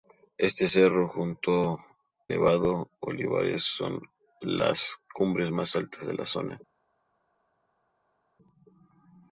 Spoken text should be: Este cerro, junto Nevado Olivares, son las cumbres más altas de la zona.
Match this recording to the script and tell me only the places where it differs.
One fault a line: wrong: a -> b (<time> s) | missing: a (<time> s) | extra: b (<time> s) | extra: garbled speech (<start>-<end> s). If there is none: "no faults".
no faults